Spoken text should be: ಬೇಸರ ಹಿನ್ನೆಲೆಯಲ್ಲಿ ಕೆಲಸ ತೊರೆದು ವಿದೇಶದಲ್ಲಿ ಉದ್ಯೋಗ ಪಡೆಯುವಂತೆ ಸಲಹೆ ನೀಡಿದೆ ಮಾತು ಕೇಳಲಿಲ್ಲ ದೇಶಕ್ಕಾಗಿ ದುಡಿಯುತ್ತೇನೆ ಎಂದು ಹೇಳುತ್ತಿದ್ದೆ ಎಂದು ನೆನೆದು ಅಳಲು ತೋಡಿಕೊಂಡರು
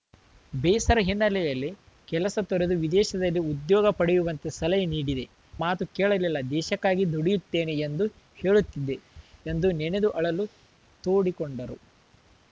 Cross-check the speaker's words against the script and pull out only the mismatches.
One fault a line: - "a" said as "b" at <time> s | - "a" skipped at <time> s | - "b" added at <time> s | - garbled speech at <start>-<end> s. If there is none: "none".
none